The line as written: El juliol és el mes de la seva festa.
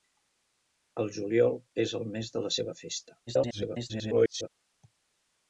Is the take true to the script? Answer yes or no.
no